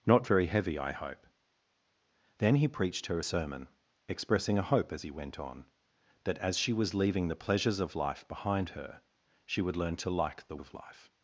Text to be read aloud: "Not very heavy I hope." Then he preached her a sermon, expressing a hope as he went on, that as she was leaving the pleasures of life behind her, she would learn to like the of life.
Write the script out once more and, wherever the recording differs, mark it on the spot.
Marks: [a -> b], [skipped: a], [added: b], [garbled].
"Not very heavy I hope." Then he preached her a sermon, expressing a hope as he went on, that as she was leaving the pleasures of life behind her, she would learn to like the of life.